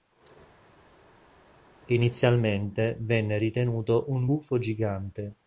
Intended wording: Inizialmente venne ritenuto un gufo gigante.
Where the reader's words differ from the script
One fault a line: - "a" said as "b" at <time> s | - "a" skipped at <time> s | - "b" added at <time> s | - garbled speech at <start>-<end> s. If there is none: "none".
none